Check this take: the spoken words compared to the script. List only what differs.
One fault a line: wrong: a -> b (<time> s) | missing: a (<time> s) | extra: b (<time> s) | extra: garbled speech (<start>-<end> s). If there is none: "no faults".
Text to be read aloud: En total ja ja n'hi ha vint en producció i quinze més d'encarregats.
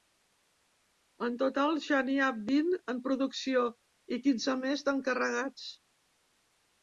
missing: ja (2.0 s)